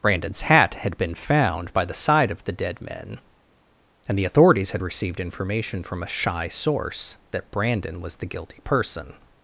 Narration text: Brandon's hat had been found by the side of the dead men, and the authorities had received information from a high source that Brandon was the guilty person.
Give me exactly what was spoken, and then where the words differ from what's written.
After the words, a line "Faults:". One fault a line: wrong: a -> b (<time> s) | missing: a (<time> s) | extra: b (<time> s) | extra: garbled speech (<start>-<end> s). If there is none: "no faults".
Brandon's hat had been found by the side of the dead men, and the authorities had received information from a shy source that Brandon was the guilty person.
Faults:
wrong: high -> shy (6.1 s)